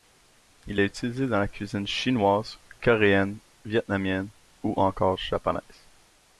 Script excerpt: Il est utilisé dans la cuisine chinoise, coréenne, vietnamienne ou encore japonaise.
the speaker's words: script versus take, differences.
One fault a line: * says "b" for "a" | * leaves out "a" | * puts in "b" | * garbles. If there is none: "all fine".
all fine